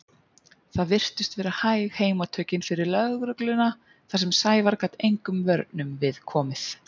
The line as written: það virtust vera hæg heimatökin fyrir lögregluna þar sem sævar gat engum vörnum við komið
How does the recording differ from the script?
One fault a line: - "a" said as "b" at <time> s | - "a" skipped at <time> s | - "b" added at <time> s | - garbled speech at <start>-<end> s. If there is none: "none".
none